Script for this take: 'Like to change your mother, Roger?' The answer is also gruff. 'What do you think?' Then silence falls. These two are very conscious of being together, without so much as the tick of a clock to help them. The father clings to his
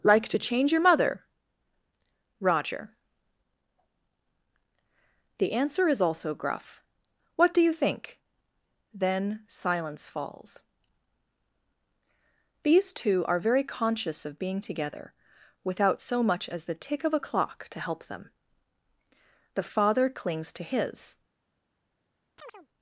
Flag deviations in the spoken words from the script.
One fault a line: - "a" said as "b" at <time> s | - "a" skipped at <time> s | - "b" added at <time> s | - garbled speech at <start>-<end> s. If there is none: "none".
none